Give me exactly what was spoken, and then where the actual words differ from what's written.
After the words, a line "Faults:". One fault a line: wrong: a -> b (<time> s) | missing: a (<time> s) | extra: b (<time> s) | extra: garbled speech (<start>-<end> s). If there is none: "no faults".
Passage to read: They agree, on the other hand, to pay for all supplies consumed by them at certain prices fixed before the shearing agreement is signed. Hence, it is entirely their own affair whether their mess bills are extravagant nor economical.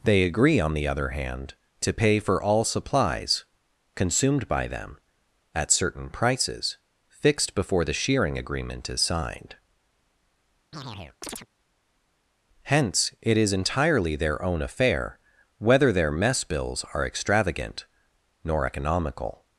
They agree, on the other hand, to pay for all supplies consumed by them at certain prices fixed before the shearing agreement is signed. Hence, it is entirely their own affair whether their mess bills are extravagant nor economical.
Faults:
no faults